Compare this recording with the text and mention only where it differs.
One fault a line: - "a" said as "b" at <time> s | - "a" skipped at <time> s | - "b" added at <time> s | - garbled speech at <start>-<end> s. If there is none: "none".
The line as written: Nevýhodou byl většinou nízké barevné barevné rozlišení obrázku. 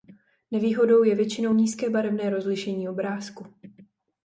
- "byl" said as "je" at 1.0 s
- "barevné" skipped at 2.3 s